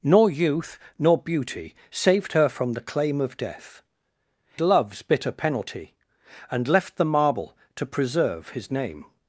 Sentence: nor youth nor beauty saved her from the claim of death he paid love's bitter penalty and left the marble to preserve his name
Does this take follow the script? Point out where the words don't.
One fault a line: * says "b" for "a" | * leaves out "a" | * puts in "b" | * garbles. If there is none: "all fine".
* leaves out "he paid"